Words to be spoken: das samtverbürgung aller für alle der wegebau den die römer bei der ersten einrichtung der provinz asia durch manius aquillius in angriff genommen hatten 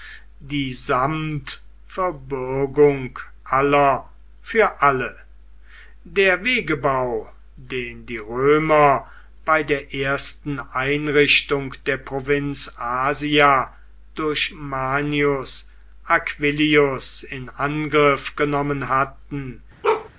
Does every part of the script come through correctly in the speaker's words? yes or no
no